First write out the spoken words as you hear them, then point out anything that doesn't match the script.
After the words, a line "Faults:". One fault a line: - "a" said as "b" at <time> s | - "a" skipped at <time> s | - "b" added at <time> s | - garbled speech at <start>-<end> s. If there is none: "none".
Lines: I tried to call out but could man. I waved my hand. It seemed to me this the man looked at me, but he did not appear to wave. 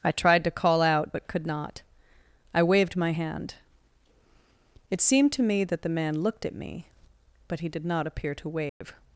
I tried to call out but could not. I waved my hand. It seemed to me that the man looked at me, but he did not appear to wave.
Faults:
- "man" said as "not" at 1.4 s
- "this" said as "that" at 5.6 s